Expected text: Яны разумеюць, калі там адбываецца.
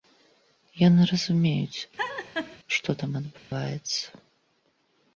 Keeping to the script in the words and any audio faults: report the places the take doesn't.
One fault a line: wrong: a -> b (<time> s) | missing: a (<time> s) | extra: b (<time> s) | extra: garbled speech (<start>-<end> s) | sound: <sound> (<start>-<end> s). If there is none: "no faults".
sound: laugh (2.0-2.6 s)
wrong: калі -> што (2.8 s)
sound: dropout (3.4-3.5 s)